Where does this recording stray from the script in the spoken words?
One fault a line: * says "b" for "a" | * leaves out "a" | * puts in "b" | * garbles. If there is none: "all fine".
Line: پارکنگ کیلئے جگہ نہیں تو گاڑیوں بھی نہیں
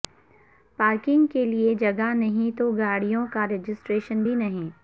* puts in "کا رجسٹریشن"